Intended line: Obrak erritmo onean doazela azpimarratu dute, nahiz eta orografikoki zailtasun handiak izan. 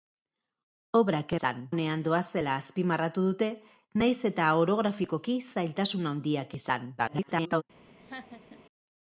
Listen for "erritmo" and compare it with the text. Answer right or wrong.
wrong